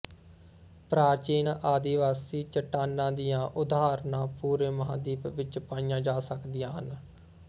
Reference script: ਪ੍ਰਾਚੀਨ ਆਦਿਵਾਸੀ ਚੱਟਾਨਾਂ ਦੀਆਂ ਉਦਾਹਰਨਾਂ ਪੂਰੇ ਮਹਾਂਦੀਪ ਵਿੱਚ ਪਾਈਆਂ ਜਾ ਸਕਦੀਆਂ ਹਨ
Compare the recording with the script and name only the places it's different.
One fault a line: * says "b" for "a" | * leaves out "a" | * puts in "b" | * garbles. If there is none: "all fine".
all fine